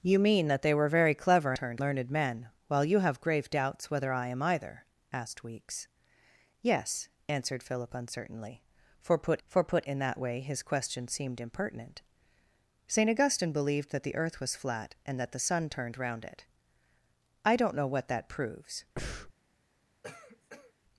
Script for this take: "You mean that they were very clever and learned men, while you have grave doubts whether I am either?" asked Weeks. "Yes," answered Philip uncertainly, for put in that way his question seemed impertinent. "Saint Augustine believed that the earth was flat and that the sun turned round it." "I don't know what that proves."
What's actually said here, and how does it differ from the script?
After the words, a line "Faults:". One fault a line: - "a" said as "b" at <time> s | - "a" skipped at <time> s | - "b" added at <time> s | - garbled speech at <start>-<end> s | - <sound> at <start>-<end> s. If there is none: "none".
"You mean that they were very clever turned learned men, while you have grave doubts whether I am either?" asked Weeks. "Yes," answered Philip uncertainly, for put for put in that way his question seemed impertinent. "Saint Augustine believed that the earth was flat and that the sun turned round it." "I don't know what that proves."
Faults:
- "and" said as "turned" at 1.5 s
- "for put" added at 9.4 s
- breath at 19.0-19.3 s
- cough at 20.0-20.7 s